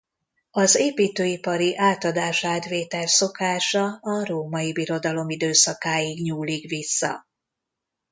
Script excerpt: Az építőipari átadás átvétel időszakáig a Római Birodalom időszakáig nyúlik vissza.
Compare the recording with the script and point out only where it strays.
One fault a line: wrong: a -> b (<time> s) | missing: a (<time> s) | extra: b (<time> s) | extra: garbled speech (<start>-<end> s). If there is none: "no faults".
wrong: időszakáig -> szokása (3.1 s)